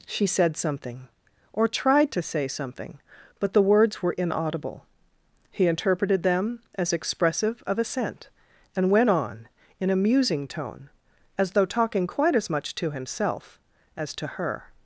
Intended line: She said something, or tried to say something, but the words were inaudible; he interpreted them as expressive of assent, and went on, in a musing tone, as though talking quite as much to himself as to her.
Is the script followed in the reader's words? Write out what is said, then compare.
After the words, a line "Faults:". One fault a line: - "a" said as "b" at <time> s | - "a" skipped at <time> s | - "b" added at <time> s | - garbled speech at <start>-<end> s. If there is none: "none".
She said something, or tried to say something, but the words were inaudible; he interpreted them as expressive of assent, and went on, in a musing tone, as though talking quite as much to himself as to her.
Faults:
none